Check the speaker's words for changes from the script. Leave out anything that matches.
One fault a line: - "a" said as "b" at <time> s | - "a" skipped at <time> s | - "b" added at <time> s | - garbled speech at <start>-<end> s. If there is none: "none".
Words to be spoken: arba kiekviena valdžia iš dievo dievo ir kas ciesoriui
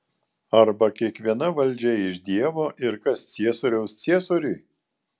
- "dievo" skipped at 2.7 s
- "ciesoriaus" added at 3.4 s